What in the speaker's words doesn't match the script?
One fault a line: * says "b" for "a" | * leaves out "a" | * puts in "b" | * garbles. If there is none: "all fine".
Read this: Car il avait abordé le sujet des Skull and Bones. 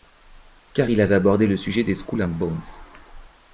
all fine